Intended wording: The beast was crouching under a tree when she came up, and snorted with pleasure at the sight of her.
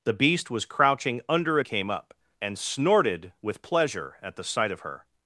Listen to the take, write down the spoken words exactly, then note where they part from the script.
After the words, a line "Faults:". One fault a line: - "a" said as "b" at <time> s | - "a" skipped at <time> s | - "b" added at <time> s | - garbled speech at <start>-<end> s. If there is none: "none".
The beast was crouching under a came up, and snorted with pleasure at the sight of her.
Faults:
- "tree when she" skipped at 1.6 s